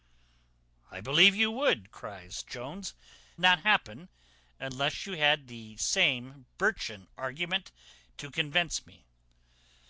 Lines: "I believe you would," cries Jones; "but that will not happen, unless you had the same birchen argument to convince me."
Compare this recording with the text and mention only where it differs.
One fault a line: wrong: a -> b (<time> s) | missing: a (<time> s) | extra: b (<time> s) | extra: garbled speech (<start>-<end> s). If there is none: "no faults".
missing: but that will (3.0 s)